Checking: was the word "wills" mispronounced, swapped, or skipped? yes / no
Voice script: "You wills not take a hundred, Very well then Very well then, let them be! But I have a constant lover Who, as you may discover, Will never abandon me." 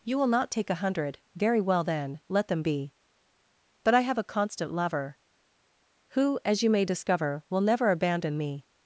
yes